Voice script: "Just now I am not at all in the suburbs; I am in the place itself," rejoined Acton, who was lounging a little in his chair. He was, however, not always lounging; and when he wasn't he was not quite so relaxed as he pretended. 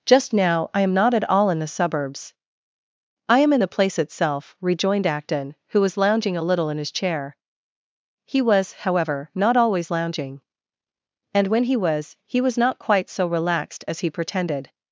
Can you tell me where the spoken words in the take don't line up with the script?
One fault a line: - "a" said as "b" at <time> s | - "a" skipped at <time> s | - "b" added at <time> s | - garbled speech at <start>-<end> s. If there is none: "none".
- "wasn't" said as "was" at 11.8 s